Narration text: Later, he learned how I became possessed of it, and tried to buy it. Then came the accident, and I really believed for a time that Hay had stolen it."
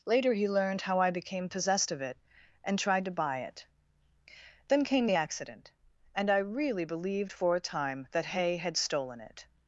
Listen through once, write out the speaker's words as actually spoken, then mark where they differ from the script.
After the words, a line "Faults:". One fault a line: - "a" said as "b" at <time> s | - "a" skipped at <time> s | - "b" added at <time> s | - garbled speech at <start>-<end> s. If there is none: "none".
Later, he learned how I became possessed of it, and tried to buy it. Then came the accident, and I really believed for a time that Hay had stolen it."
Faults:
none